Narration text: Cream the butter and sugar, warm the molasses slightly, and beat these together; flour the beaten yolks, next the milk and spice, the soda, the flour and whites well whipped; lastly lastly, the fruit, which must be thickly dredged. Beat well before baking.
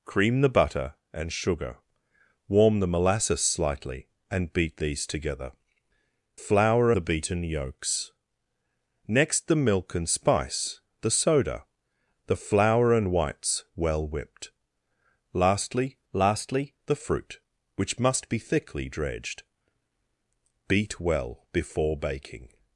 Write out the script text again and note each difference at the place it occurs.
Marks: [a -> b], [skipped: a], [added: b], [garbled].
Cream the butter and sugar, warm the molasses slightly, and beat these together; flour the beaten yolks, next the milk and spice, the soda, the flour and whites well whipped; lastly lastly, the fruit, which must be thickly dredged. Beat well before baking.